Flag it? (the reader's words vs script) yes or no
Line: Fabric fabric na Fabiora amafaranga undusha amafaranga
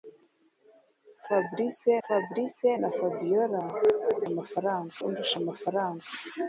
no